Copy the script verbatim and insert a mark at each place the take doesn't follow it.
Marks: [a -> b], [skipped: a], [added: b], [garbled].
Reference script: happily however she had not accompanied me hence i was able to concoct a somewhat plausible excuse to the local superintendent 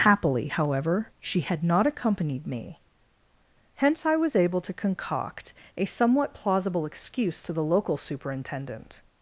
happily however she had not accompanied me hence i was able to concoct a somewhat plausible excuse to the local superintendent